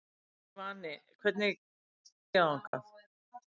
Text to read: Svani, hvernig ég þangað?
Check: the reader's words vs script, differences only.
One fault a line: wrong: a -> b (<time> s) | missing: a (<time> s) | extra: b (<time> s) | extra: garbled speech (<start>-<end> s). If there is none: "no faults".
no faults